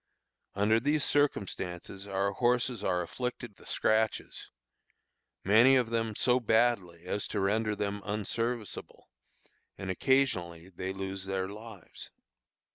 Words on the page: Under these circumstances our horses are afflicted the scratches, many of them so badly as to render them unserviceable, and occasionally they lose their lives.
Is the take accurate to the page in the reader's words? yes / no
yes